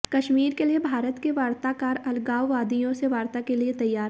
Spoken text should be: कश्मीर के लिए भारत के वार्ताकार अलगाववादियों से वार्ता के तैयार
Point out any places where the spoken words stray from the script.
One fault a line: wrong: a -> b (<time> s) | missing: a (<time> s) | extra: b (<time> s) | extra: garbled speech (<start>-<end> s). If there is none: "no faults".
extra: लिए (3.5 s)